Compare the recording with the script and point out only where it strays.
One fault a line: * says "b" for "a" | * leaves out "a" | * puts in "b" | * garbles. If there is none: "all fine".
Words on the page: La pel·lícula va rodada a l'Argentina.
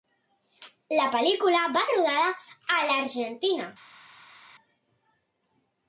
all fine